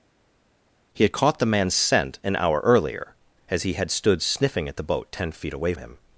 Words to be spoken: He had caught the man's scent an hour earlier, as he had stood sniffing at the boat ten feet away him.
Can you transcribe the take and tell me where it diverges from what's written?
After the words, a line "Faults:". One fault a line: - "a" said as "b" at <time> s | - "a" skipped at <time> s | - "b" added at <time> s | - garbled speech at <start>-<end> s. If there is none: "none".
He had caught the man's scent an hour earlier, as he had stood sniffing at the boat ten feet away him.
Faults:
none